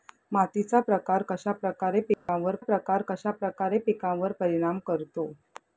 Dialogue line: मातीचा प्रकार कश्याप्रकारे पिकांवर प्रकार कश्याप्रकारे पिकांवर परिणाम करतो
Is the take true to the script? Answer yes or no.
yes